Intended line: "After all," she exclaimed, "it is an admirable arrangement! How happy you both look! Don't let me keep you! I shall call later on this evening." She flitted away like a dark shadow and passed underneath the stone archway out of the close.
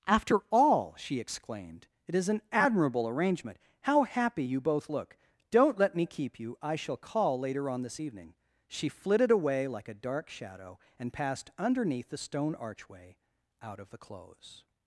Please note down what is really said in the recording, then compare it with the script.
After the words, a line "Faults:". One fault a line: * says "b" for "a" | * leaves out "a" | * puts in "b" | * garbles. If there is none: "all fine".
"After all," she exclaimed, "it is an admirable arrangement! How happy you both look! Don't let me keep you! I shall call later on this evening." She flitted away like a dark shadow and passed underneath the stone archway out of the close.
Faults:
all fine